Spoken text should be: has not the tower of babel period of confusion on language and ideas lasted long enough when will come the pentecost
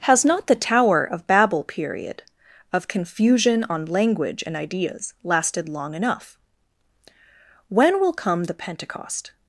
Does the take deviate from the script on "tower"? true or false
false